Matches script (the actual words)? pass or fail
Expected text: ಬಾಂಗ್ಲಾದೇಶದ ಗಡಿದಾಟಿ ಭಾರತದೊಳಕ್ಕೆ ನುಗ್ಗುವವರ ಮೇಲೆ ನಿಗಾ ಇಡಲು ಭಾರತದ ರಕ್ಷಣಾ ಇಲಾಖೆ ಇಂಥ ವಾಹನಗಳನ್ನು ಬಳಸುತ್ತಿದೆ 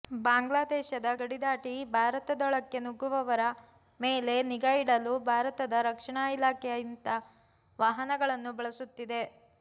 pass